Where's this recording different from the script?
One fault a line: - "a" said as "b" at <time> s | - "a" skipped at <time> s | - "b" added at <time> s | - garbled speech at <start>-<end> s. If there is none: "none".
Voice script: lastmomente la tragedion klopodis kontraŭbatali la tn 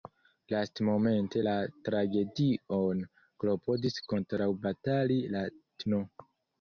none